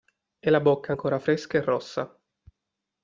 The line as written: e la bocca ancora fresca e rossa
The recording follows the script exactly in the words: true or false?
true